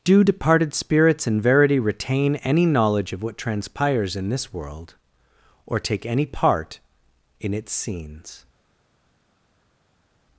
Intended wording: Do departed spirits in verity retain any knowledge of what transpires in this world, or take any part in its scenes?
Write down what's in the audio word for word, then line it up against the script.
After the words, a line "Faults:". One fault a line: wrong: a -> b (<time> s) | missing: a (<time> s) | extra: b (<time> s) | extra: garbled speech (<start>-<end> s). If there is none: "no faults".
Do departed spirits in verity retain any knowledge of what transpires in this world, or take any part in its scenes?
Faults:
no faults